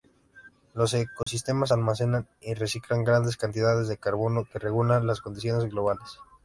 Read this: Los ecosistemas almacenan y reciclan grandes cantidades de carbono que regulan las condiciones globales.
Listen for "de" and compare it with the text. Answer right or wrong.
right